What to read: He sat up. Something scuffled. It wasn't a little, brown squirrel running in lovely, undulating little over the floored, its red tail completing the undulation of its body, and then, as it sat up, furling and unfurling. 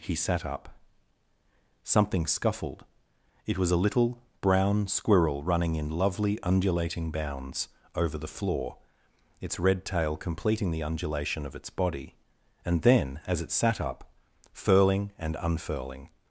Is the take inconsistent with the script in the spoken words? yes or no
yes